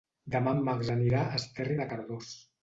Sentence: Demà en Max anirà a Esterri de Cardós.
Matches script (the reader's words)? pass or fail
pass